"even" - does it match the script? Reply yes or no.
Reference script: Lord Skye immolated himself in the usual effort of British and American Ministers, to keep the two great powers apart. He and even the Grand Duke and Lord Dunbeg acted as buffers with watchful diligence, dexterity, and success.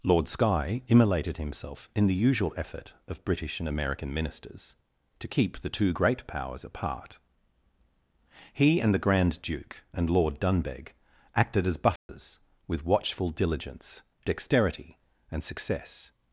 no